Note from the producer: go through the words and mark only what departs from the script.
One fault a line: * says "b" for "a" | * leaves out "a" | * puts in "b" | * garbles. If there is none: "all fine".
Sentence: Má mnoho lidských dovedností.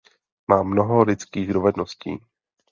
all fine